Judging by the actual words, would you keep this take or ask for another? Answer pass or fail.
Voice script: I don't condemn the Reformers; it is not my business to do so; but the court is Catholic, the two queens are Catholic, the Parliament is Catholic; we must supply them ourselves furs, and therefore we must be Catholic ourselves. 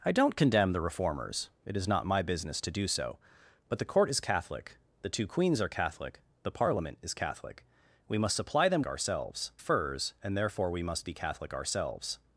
pass